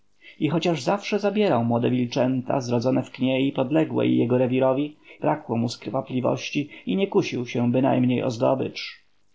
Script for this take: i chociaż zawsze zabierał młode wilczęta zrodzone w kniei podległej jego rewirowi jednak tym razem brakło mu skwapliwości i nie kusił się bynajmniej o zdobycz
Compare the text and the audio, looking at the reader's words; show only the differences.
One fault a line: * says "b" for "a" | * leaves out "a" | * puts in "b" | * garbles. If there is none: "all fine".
* leaves out "jednak tym razem"